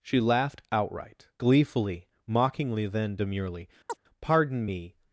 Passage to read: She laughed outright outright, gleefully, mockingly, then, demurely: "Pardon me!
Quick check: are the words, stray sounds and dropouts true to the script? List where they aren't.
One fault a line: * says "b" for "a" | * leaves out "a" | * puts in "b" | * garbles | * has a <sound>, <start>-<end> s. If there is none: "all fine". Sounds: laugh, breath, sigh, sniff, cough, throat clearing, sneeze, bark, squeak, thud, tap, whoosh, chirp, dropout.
* leaves out "outright"
* has a chirp, 3.9-4.0 s